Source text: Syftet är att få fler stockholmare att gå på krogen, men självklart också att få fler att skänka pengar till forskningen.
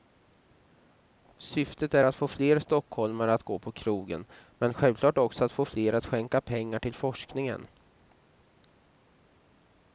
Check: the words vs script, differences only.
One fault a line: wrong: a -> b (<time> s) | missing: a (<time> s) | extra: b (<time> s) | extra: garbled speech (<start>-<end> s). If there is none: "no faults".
no faults